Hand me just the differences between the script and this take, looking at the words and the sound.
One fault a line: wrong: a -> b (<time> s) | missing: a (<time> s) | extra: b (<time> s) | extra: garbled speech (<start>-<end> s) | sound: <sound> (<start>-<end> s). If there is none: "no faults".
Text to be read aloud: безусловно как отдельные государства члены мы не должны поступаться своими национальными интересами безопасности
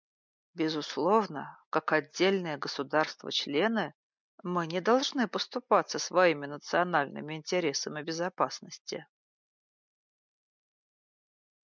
no faults